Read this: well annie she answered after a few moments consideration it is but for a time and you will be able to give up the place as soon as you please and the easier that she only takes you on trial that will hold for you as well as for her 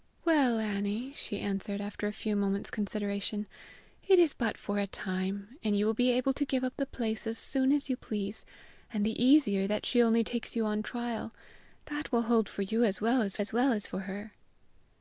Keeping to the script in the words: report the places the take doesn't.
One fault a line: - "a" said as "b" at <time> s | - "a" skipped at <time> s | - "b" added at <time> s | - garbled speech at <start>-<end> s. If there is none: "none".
- "as well as" added at 13.4 s